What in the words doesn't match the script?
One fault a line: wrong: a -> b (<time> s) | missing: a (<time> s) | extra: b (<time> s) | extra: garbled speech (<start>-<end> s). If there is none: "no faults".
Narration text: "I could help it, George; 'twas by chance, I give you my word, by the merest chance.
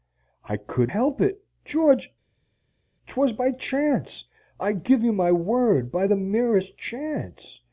no faults